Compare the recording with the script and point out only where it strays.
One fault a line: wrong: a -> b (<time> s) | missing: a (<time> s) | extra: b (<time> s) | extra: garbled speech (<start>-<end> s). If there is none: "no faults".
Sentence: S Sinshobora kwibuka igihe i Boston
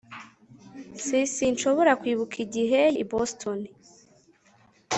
no faults